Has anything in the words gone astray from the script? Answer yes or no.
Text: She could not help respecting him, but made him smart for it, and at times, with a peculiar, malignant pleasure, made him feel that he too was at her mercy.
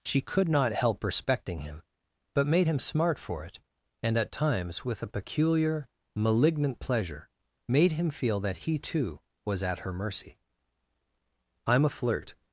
yes